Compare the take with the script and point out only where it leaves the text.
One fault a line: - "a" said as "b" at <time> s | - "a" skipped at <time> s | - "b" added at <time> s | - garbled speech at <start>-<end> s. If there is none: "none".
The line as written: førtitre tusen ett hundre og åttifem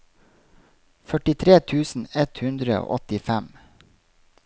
none